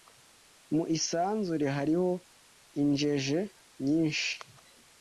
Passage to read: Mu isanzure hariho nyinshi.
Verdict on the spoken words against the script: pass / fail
fail